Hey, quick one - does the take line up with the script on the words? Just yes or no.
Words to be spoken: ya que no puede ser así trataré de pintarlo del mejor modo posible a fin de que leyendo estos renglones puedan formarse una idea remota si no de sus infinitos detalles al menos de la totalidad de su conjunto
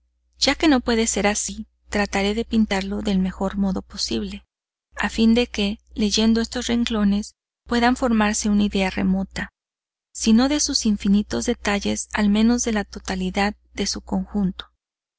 yes